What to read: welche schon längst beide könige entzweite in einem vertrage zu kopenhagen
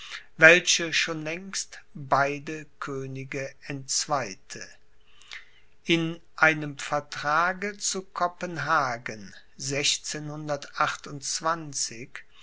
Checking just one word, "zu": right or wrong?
right